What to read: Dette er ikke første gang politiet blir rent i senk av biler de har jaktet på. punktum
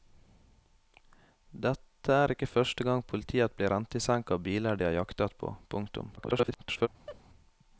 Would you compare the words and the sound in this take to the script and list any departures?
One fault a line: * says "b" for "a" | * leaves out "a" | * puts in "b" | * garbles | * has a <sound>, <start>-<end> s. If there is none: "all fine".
* garbles
* has a laugh, 7.1-7.2 s